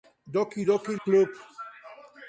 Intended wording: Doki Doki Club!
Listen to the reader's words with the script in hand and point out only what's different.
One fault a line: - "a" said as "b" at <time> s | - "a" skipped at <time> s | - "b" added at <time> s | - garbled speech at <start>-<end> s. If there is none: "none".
none